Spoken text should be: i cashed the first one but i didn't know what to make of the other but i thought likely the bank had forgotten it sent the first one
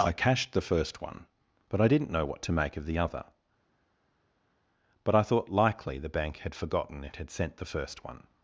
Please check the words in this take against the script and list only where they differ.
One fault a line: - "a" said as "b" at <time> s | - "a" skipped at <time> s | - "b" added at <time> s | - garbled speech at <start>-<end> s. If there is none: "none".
- "had" added at 7.2 s